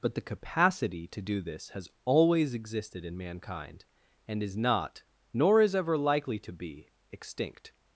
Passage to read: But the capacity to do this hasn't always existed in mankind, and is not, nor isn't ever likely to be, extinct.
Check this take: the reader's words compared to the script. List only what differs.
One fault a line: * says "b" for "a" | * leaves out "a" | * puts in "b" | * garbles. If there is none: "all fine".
* says "has" for "hasn't"
* says "is" for "isn't"